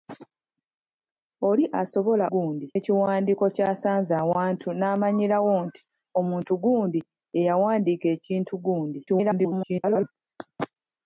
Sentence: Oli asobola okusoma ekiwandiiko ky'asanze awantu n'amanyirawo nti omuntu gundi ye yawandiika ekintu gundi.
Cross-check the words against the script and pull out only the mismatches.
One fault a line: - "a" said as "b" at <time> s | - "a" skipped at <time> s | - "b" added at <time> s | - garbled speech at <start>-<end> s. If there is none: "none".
- "okusoma" said as "gundi" at 2.3 s
- garbled speech at 9.1-10.1 s